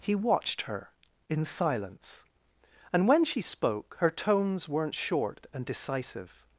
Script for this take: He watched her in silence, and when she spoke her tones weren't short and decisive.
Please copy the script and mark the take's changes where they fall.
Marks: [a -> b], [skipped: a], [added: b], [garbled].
He watched her in silence, and when she spoke her tones weren't short and decisive.